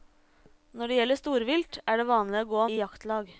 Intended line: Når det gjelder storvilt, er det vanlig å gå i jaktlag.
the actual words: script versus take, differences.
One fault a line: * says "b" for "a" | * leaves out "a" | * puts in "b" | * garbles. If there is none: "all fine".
all fine